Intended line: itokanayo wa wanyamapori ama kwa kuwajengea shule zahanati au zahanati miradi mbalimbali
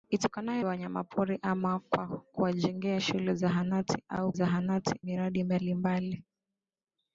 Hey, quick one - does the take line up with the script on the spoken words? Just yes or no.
yes